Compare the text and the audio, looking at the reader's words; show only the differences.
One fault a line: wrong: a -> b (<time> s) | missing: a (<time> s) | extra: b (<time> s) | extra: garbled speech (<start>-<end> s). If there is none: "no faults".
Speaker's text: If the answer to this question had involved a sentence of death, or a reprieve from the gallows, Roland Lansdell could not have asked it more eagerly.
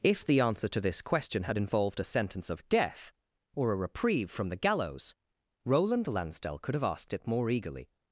missing: not (6.8 s)